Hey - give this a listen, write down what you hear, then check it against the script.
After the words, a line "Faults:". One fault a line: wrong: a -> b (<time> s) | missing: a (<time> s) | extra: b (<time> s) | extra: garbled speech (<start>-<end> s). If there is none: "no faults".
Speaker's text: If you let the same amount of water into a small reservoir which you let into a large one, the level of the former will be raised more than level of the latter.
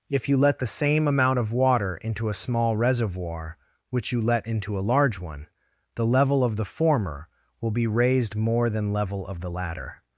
If you let the same amount of water into a small reservoir which you let into a large one, the level of the former will be raised more than level of the latter.
Faults:
no faults